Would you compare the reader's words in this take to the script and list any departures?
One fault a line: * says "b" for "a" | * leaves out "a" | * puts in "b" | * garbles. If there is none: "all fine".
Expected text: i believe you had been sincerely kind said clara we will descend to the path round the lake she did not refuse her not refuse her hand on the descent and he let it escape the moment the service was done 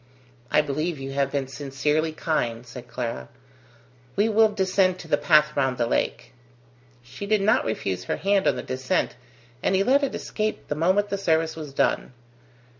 * says "have" for "had"
* leaves out "not refuse her"